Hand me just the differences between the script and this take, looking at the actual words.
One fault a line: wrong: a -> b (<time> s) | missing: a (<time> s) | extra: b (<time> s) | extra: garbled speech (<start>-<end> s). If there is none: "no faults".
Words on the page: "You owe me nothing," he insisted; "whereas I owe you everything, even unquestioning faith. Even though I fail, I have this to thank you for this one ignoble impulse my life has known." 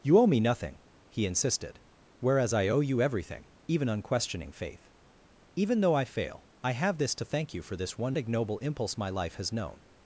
no faults